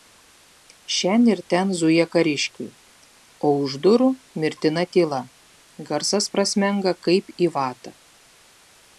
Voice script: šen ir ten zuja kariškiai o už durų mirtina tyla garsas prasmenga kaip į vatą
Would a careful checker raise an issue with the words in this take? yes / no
no